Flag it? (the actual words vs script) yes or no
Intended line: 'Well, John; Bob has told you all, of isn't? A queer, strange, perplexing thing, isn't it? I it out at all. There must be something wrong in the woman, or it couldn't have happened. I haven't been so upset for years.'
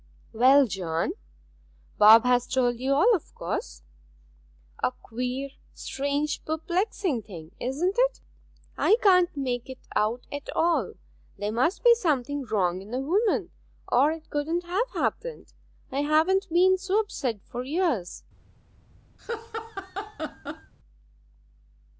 yes